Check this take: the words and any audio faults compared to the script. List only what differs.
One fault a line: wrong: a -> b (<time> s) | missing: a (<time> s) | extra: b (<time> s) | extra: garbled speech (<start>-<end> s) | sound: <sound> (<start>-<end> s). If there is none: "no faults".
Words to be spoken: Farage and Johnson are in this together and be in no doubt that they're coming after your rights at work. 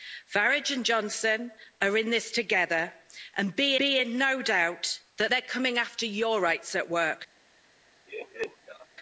extra: be (3.8 s)
sound: laugh (8.1-8.9 s)